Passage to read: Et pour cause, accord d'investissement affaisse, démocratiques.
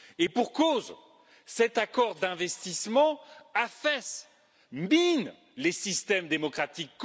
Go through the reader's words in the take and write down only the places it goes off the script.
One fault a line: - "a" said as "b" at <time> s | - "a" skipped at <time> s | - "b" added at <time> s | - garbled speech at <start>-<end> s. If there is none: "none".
- "cet" added at 1.4 s
- "mine les systèmes" added at 4.7 s